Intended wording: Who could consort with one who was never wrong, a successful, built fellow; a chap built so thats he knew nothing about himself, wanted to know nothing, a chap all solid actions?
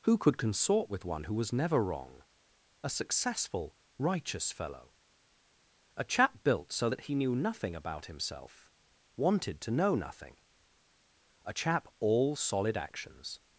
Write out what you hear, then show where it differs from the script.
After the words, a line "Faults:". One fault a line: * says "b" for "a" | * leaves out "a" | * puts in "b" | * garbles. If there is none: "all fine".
Who could consort with one who was never wrong, a successful, righteous fellow; a chap built so that he knew nothing about himself, wanted to know nothing, a chap all solid actions?
Faults:
* says "righteous" for "built"
* says "that" for "thats"